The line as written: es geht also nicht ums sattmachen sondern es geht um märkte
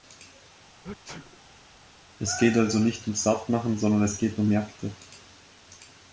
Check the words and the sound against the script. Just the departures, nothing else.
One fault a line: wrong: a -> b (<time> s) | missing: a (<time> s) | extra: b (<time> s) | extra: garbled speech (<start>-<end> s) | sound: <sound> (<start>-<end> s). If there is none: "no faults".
sound: sneeze (0.8-1.7 s)